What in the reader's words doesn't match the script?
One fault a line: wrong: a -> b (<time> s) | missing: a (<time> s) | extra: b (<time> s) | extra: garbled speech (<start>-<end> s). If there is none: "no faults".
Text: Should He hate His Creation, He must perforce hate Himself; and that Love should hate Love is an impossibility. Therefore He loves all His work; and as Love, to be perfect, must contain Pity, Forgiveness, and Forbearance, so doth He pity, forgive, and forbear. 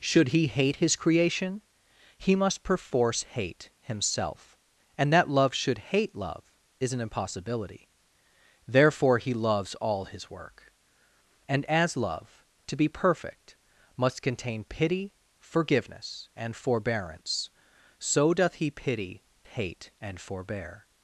wrong: forgive -> hate (19.4 s)